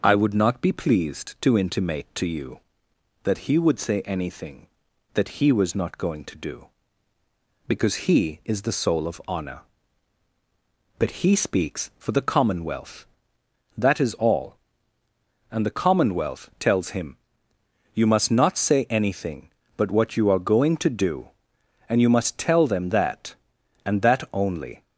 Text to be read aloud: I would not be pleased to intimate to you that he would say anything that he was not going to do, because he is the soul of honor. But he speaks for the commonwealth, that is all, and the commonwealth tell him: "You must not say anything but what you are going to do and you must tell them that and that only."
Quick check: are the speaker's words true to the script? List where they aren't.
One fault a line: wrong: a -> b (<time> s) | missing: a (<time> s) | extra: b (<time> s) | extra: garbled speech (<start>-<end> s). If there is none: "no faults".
wrong: tell -> tells (16.6 s)